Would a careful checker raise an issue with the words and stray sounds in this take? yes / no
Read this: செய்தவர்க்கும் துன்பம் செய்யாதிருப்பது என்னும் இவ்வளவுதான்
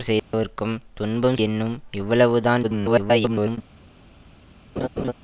yes